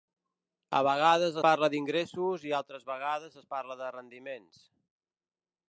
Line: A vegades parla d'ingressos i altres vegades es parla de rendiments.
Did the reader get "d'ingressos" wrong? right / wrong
right